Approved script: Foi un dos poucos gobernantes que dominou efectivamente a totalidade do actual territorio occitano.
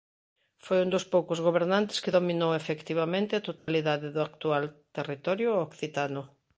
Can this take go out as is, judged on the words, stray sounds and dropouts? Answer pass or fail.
fail